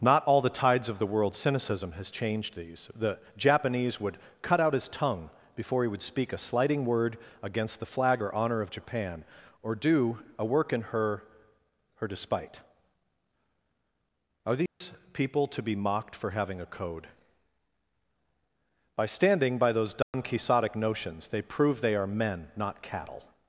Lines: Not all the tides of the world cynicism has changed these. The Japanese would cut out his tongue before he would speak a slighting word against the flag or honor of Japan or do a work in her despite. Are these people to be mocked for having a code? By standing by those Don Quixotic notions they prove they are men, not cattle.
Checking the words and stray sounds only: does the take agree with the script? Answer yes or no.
no